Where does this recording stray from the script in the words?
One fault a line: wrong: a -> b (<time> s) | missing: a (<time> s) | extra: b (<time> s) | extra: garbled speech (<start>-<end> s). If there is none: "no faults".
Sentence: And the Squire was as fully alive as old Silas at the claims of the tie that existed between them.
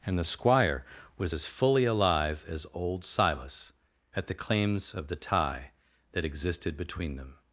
no faults